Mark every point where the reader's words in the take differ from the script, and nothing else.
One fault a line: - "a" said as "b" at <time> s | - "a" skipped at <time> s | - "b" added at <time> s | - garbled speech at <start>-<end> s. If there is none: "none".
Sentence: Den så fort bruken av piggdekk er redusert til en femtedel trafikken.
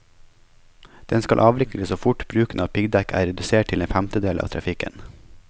- "skal avvikles" added at 1.2 s
- "av" added at 4.4 s